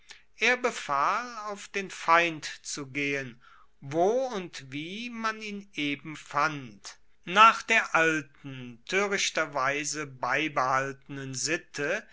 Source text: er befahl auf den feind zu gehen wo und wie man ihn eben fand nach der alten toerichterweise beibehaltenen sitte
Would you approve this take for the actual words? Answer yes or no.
yes